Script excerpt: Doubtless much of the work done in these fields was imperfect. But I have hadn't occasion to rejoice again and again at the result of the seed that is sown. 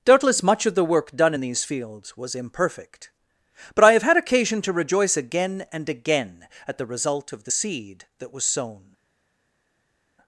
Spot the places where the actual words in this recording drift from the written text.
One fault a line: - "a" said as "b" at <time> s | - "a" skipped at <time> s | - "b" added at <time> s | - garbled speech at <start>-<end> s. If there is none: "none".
- "hadn't" said as "had" at 4.0 s
- "is" said as "was" at 8.3 s